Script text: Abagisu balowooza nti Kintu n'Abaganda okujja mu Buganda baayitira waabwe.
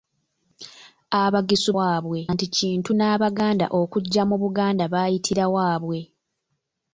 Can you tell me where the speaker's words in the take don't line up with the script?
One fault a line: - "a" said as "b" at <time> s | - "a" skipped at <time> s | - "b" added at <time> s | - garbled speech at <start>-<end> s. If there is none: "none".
- "balowooza" said as "waabwe" at 1.8 s